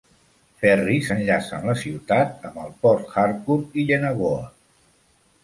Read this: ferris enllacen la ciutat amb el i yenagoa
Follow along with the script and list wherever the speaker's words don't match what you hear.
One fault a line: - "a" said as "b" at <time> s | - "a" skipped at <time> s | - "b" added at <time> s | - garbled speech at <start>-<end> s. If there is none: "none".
- "port harcourt" added at 2.8 s